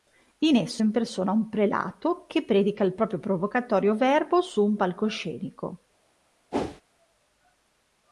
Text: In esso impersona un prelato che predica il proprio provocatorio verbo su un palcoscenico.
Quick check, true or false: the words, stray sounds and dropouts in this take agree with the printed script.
false